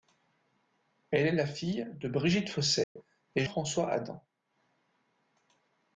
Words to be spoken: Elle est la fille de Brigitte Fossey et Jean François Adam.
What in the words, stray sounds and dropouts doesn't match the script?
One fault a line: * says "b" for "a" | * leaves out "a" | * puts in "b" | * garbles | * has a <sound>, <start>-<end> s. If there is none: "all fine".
* has a dropout, 2.8-3.0 s
* leaves out "Jean"